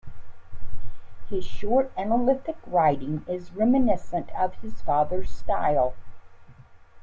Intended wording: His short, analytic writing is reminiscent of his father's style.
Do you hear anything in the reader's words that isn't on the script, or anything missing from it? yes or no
no